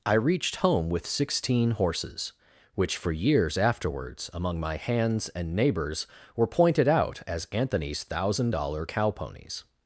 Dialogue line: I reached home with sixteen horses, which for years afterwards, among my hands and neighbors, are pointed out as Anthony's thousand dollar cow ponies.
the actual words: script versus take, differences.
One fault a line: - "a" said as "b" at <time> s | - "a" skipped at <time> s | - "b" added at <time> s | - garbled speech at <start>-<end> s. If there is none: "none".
- "are" said as "were" at 6.3 s